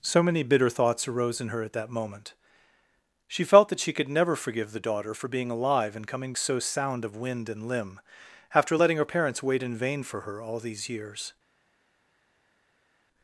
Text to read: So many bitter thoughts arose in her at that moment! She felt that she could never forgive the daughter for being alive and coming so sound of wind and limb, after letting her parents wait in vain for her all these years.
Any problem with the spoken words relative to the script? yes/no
no